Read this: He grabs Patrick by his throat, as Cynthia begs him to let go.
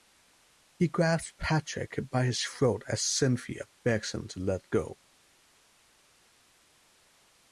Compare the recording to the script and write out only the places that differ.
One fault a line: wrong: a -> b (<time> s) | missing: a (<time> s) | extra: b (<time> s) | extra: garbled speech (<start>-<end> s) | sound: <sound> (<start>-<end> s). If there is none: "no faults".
no faults